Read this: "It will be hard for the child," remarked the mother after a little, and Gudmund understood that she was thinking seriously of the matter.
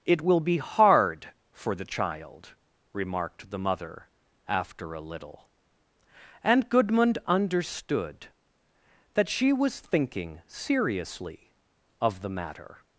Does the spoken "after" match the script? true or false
true